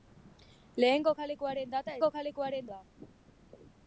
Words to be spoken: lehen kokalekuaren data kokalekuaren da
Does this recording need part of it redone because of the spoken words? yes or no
no